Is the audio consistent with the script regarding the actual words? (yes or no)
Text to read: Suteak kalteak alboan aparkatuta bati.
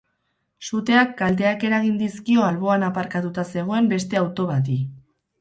no